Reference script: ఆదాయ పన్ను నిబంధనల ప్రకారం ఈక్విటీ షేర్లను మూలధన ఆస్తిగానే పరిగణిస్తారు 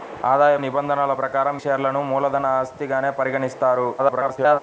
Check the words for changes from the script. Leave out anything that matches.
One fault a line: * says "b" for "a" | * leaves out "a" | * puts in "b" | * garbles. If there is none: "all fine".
* leaves out "పన్ను"
* leaves out "ఈక్విటీ"
* garbles